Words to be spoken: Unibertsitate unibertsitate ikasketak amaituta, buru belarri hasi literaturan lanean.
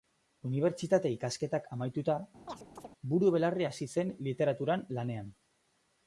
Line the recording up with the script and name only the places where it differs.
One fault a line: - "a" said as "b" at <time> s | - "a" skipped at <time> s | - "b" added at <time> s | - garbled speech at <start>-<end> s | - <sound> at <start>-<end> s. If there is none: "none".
- "unibertsitate" skipped at 1.1 s
- chirp at 2.5-2.9 s
- "zen" added at 4.0 s